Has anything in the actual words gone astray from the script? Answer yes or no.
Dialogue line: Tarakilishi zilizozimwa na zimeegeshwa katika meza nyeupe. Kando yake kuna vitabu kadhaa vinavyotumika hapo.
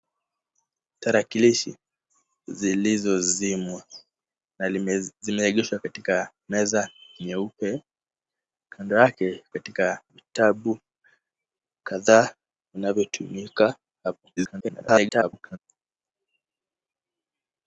yes